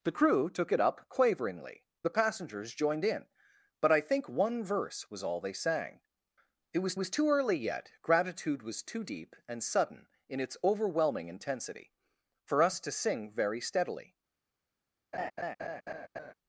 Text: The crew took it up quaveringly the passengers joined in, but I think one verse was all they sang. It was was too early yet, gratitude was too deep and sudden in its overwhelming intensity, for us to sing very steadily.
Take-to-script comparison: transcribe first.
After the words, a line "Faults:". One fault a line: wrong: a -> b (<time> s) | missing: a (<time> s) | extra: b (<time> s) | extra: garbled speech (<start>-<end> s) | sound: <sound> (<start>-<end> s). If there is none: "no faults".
The crew took it up quaveringly the passengers joined in, but I think one verse was all they sang. It was was too early yet, gratitude was too deep and sudden in its overwhelming intensity, for us to sing very steadily.
Faults:
sound: laugh (15.1-16.3 s)